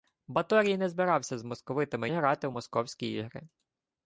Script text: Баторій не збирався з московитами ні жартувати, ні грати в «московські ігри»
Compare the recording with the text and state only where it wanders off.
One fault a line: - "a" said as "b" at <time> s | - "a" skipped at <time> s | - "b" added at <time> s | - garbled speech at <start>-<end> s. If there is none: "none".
- "ні жартувати ні" skipped at 2.1 s